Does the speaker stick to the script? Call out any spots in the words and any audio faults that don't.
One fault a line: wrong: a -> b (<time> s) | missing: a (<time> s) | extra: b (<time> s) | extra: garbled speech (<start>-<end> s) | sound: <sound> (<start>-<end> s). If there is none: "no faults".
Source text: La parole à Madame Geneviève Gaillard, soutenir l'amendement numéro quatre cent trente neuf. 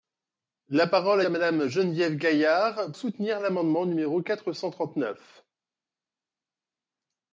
no faults